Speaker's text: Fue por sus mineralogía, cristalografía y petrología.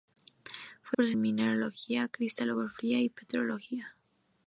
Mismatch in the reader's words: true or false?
false